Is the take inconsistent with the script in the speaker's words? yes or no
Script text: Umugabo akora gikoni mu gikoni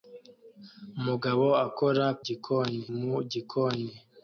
no